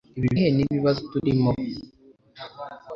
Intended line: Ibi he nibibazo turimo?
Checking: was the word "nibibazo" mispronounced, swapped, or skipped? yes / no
no